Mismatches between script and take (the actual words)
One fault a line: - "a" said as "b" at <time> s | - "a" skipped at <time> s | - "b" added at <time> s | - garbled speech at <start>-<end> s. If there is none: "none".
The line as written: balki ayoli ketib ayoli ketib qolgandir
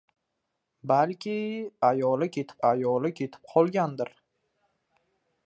none